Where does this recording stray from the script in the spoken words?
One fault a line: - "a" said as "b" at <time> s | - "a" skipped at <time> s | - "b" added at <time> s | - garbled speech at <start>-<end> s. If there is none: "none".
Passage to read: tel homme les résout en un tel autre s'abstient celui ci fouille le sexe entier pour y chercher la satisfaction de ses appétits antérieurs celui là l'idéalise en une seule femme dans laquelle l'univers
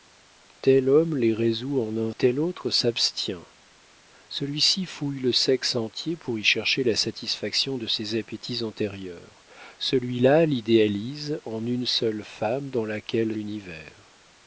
none